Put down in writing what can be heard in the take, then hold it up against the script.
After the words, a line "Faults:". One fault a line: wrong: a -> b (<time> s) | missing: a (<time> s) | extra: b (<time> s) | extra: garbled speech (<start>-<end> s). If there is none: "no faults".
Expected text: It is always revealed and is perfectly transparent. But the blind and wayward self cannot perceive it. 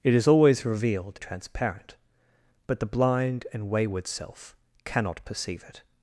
It is always revealed transparent. But the blind and wayward self cannot perceive it.
Faults:
missing: and is perfectly (1.2 s)